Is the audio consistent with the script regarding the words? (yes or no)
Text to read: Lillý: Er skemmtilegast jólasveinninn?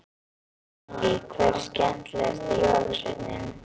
no